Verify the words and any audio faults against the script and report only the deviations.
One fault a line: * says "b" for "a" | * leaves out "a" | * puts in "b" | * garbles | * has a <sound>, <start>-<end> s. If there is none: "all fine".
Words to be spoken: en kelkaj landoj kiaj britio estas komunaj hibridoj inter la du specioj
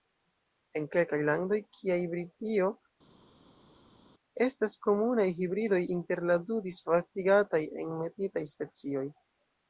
* puts in "disvastigataj enmetitaj"